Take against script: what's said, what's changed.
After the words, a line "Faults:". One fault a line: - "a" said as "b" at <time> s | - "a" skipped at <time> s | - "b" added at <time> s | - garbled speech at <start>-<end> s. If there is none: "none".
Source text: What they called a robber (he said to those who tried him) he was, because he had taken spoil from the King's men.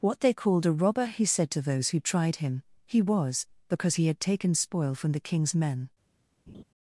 What they called a robber (he said to those who tried him) he was, because he had taken spoil from the King's men.
Faults:
none